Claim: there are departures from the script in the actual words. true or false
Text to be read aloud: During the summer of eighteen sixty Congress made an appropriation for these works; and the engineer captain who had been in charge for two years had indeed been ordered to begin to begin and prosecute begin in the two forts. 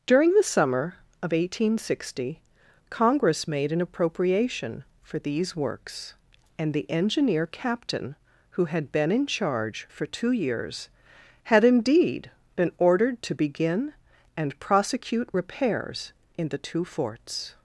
true